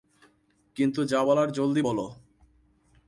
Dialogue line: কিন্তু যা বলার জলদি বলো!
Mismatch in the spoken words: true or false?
false